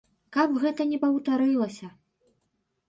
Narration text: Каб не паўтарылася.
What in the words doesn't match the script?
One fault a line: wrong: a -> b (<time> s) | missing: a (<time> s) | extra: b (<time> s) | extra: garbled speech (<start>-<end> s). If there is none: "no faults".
extra: гэта (0.6 s)